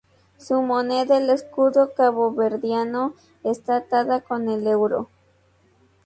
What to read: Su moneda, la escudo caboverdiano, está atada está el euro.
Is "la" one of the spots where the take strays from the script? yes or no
yes